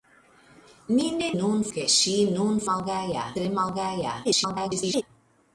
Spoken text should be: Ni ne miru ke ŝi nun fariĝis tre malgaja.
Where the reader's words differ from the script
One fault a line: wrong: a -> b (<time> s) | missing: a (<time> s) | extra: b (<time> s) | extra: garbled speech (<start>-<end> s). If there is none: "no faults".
wrong: miru -> nun (1.4 s)
wrong: fariĝis -> malgaja (2.7 s)
extra: garbled speech (4.2-5.0 s)